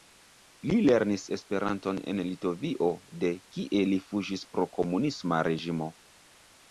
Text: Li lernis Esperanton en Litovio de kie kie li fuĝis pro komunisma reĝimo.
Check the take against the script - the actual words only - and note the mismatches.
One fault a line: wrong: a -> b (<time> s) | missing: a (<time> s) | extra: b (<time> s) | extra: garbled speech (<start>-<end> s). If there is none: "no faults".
missing: kie (3.8 s)